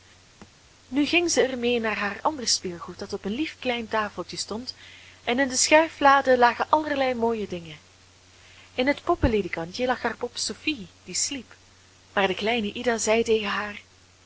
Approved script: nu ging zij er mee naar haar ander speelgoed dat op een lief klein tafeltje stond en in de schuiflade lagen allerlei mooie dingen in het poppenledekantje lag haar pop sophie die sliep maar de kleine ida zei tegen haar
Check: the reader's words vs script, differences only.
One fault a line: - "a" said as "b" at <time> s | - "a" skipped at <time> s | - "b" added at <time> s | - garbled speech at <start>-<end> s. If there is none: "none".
none